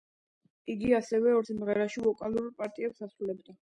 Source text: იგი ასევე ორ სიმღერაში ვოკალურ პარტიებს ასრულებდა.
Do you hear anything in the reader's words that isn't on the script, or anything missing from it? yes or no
no